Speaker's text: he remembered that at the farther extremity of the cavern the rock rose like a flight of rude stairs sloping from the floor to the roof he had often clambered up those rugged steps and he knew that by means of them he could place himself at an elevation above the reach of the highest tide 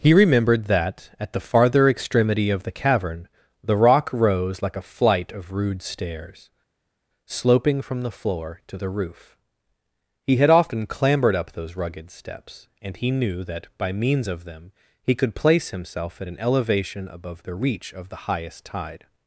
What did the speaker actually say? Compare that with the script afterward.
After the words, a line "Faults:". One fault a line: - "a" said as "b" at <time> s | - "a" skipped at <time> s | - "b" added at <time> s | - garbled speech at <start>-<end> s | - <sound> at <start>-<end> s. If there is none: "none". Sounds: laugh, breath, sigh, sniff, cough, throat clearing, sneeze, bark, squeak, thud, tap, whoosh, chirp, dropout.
he remembered that at the farther extremity of the cavern the rock rose like a flight of rude stairs sloping from the floor to the roof he had often clambered up those rugged steps and he knew that by means of them he could place himself at an elevation above the reach of the highest tide
Faults:
none